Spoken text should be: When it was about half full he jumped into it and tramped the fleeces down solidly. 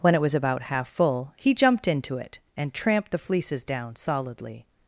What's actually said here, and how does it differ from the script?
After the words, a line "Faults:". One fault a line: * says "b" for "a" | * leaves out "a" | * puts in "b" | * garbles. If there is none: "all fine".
When it was about half full he jumped into it and tramped the fleeces down solidly.
Faults:
all fine